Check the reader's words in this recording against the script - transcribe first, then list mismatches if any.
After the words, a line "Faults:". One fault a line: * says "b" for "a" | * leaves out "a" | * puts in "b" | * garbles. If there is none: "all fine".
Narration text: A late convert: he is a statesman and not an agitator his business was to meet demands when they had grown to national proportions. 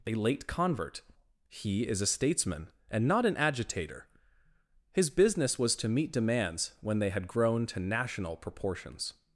A late convert: he is a statesman and not an agitator his business was to meet demands when they had grown to national proportions.
Faults:
all fine